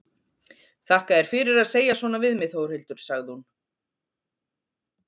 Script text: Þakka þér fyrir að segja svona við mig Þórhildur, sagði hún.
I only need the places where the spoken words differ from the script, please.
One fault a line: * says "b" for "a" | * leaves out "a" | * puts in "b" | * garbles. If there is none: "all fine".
all fine